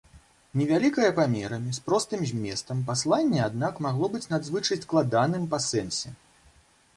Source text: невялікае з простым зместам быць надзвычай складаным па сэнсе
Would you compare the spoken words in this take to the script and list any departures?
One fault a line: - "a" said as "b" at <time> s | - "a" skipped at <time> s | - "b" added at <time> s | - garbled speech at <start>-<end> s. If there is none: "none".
- "памерамі" added at 1.2 s
- "пасланне аднак магло" added at 2.9 s